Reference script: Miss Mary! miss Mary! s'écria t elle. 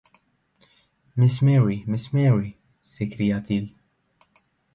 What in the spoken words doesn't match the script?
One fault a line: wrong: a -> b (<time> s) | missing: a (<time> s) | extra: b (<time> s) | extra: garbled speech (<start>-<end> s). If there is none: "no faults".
wrong: elle -> il (3.5 s)